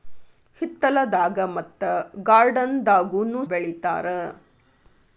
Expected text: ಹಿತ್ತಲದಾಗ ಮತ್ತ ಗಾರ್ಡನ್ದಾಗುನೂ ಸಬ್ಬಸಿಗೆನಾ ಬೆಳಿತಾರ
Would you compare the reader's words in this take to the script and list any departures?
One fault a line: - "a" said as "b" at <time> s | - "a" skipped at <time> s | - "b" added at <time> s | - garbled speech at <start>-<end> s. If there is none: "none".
- "ಸಬ್ಬಸಿಗೆನಾ" skipped at 3.4 s